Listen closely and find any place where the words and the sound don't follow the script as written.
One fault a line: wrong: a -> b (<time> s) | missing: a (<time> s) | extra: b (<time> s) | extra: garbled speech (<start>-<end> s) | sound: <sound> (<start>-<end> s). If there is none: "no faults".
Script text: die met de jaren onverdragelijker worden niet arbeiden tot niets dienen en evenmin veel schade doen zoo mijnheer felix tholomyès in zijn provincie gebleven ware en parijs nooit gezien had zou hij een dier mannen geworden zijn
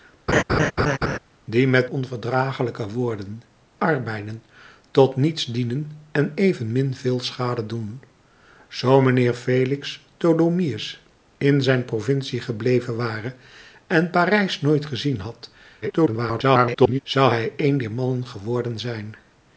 sound: laugh (0.3-1.2 s)
missing: de jaren (1.9 s)
missing: niet (3.4 s)
extra: garbled speech (15.8-17.0 s)